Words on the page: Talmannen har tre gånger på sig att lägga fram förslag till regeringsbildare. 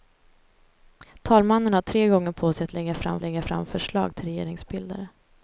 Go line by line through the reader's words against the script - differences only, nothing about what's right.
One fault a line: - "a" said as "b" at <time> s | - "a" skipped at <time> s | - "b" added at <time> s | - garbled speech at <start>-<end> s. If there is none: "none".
- "lägga fram" added at 3.2 s